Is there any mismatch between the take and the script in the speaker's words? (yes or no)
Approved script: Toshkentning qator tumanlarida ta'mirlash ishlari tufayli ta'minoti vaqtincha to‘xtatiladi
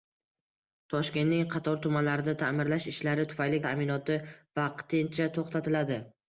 no